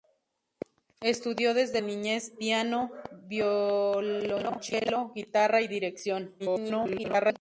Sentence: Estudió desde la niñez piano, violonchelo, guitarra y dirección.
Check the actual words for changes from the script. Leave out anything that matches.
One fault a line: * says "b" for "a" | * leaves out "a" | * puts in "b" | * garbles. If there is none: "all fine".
* leaves out "la"
* garbles